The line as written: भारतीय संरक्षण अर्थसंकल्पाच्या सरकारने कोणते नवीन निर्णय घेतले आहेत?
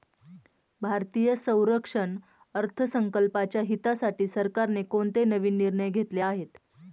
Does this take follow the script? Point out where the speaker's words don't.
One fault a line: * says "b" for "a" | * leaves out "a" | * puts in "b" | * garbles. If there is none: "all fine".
* puts in "हितासाठी"